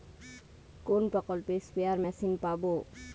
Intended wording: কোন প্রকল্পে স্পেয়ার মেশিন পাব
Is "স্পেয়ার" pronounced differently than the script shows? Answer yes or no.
no